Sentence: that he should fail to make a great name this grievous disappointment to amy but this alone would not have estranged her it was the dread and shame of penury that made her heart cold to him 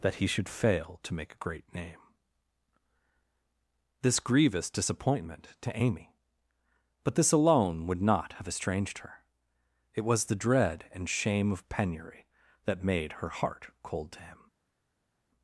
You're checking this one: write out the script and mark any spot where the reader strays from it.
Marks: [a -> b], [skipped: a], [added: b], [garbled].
that he should fail to make a great name this grievous disappointment to amy but this alone would not have estranged her it was the dread and shame of penury that made her heart cold to him